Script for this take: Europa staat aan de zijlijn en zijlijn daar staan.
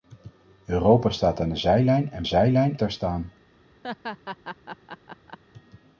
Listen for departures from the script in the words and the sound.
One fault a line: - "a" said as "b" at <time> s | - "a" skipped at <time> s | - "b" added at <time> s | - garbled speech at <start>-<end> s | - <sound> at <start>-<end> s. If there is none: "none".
- laugh at 3.8-5.4 s